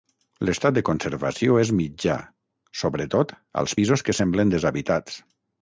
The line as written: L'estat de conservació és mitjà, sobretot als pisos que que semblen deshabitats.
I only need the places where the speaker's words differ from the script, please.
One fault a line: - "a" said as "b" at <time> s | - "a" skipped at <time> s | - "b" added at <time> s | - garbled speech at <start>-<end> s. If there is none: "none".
- "que" skipped at 4.2 s